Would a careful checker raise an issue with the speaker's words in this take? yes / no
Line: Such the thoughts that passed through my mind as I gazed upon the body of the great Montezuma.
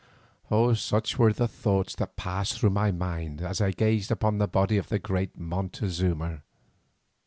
yes